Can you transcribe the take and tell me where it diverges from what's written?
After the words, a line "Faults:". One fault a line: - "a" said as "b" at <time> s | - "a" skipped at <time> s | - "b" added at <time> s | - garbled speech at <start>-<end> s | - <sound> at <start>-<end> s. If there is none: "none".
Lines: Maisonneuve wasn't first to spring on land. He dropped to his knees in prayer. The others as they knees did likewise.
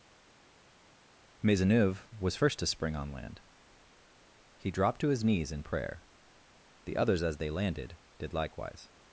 Maisonneuve was first to spring on land. He dropped to his knees in prayer. The others as they landed did likewise.
Faults:
- "wasn't" said as "was" at 2.2 s
- "knees" said as "landed" at 7.5 s